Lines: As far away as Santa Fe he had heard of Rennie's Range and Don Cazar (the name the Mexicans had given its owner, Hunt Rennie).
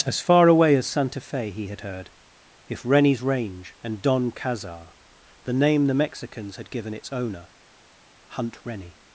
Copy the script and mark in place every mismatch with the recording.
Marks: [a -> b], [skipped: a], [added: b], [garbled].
As far away as Santa Fe he had heard [of -> if] Rennie's Range and Don Cazar (the name the Mexicans had given its owner, Hunt Rennie).